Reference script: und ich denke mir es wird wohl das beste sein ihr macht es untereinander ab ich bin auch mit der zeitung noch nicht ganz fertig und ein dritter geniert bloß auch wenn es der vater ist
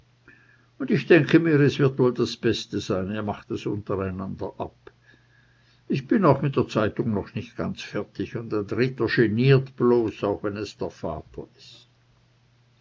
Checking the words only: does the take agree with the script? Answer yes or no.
yes